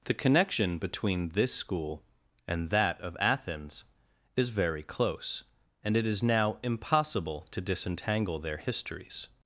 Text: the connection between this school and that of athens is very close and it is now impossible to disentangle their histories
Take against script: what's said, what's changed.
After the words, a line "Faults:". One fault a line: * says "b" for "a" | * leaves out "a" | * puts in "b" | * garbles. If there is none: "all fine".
the connection between this school and that of athens is very close and it is now impossible to disentangle their histories
Faults:
all fine